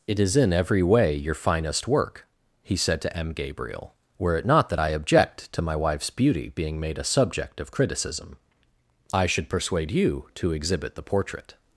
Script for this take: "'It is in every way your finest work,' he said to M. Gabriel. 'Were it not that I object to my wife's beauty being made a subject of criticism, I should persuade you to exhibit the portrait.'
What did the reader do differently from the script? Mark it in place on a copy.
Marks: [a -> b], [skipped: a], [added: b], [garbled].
"'It is in every way your finest work,' he said to M. Gabriel. 'Were it not that I object to my wife's beauty being made a subject of criticism, I should persuade you to exhibit the portrait.'